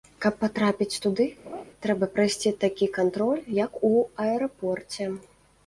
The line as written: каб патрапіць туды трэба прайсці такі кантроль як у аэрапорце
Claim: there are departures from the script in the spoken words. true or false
false